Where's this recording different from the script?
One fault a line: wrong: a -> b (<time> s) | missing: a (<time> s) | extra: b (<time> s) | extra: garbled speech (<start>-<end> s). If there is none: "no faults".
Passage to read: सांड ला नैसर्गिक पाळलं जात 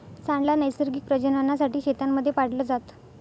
extra: प्रजननासाठी शेतांमध्ये (1.0 s)